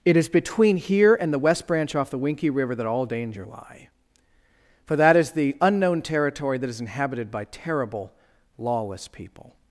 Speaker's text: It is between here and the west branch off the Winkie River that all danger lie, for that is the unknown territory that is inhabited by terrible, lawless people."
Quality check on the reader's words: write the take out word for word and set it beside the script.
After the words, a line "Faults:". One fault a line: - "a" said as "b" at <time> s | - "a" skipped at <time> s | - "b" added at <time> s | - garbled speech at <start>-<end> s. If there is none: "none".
It is between here and the west branch off the Winkie River that all danger lie, for that is the unknown territory that is inhabited by terrible, lawless people."
Faults:
none